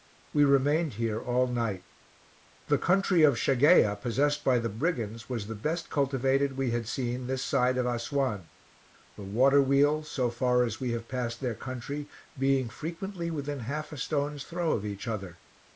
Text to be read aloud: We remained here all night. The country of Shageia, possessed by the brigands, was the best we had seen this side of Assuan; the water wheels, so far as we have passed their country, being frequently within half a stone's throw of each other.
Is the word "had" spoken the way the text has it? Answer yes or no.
yes